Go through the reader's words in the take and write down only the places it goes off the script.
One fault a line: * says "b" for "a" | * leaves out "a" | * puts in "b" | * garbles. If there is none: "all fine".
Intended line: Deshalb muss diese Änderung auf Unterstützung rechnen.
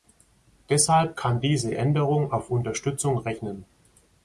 * says "kann" for "muss"